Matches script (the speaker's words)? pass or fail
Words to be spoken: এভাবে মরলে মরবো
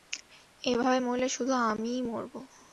fail